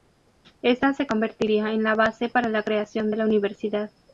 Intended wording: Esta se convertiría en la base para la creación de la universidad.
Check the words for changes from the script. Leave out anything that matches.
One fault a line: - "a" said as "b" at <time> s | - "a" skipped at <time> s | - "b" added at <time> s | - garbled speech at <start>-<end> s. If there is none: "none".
none